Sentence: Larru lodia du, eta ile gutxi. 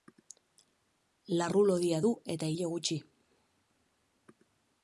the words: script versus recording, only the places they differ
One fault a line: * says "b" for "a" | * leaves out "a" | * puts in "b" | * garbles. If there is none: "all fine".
all fine